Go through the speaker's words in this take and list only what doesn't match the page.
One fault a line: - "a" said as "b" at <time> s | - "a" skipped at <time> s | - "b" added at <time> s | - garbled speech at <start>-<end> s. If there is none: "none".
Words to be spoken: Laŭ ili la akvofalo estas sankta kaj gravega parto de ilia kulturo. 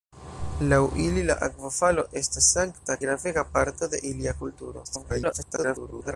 - "kaj" skipped at 3.0 s
- garbled speech at 4.8-6.2 s